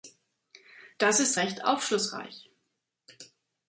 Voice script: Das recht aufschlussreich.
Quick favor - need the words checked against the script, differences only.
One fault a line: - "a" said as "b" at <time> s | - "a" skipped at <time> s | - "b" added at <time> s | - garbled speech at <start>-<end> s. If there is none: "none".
- "ist" added at 1.2 s